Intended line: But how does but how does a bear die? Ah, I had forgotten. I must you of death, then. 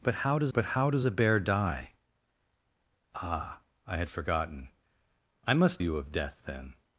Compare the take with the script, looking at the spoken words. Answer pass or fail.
pass